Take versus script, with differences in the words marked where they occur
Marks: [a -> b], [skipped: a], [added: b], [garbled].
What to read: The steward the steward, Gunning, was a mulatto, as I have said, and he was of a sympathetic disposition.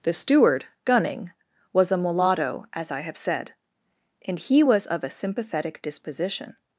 The steward [skipped: the steward,] Gunning, was a mulatto, as I have said, and he was of a sympathetic disposition.